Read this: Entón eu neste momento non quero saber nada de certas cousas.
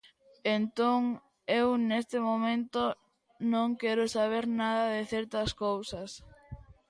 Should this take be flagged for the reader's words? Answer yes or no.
no